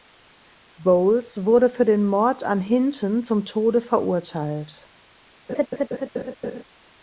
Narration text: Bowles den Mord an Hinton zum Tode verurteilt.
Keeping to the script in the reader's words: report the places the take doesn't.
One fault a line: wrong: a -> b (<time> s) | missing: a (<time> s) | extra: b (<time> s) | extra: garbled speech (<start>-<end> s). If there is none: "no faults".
extra: wurde für (1.4 s)